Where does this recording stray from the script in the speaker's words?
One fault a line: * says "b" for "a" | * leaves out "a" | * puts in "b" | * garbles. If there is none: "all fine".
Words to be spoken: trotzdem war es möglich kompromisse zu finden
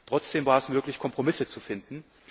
all fine